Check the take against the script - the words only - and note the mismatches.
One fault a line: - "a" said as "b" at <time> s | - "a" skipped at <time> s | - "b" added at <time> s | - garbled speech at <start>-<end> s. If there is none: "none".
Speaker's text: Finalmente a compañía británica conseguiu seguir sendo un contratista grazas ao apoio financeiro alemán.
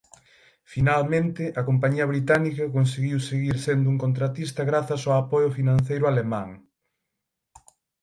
none